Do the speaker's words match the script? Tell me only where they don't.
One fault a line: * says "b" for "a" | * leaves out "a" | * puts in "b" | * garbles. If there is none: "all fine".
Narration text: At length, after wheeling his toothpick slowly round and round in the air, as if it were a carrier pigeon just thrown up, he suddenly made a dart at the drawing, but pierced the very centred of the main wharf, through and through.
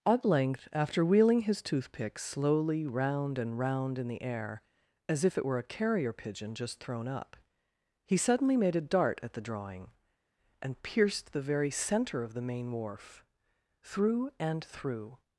* says "and" for "but"
* says "centre" for "centred"